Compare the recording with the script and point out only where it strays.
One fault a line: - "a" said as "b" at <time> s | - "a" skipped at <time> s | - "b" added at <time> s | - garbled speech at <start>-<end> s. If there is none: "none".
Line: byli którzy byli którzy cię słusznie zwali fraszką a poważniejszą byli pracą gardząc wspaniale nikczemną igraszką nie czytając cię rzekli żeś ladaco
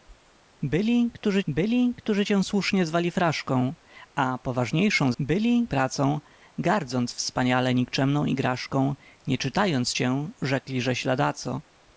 none